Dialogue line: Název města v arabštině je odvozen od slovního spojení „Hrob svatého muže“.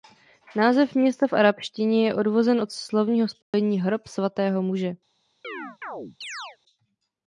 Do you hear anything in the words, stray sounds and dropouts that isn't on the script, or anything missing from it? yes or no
yes